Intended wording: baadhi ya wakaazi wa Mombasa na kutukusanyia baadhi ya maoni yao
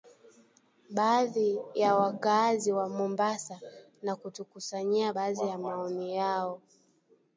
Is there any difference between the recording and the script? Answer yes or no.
no